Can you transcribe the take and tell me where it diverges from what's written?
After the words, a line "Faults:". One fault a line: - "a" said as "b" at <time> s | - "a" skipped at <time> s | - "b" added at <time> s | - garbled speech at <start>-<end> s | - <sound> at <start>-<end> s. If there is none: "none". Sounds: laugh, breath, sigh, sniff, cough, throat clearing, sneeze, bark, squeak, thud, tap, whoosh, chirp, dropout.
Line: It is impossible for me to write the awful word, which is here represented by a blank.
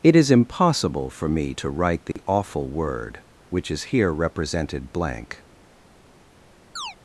It is impossible for me to write the awful word, which is here represented blank.
Faults:
- dropout at 2.1-2.2 s
- "by a" skipped at 4.9 s
- chirp at 6.8-7.0 s